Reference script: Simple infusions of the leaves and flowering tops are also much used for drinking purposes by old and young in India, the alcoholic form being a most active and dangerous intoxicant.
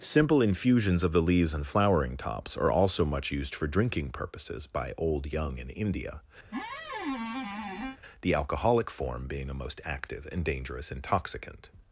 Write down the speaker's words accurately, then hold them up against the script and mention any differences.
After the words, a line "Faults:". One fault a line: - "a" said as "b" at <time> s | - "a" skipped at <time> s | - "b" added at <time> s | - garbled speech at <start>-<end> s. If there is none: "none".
Simple infusions of the leaves and flowering tops are also much used for drinking purposes by old young in India, the alcoholic form being a most active and dangerous intoxicant.
Faults:
- "and" skipped at 5.3 s